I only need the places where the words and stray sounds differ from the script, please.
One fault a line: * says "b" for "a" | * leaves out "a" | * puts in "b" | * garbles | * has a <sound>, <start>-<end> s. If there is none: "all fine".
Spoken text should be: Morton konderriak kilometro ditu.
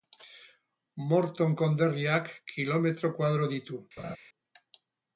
* puts in "koadro"
* has a laugh, 4.0-4.2 s